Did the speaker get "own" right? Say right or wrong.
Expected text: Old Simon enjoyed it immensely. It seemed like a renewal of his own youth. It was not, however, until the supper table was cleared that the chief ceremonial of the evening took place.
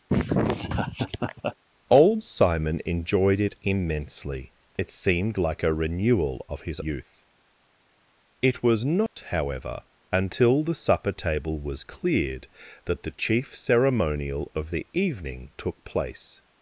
wrong